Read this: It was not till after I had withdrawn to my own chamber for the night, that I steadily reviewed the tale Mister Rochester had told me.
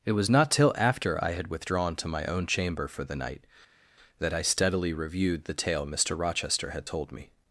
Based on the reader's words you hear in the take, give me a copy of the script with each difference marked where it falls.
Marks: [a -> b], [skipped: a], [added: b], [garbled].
It was not till after I had withdrawn to my own chamber for the night, that I steadily reviewed the tale Mister Rochester had told me.